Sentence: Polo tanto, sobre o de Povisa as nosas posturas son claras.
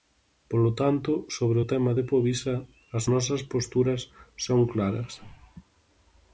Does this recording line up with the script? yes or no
no